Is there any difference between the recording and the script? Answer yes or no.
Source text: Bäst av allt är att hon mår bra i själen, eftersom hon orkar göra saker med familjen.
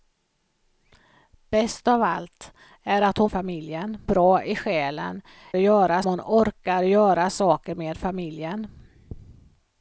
yes